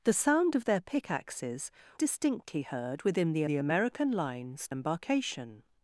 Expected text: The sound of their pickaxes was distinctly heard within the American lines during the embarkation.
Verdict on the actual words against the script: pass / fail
fail